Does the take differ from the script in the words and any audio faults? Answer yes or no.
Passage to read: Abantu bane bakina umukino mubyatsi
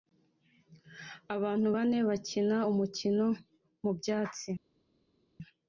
no